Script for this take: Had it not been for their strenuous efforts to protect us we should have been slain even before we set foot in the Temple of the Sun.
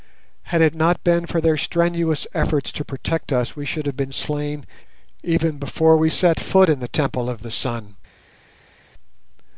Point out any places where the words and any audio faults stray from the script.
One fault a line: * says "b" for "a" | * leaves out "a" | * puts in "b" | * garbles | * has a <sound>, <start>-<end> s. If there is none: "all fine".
all fine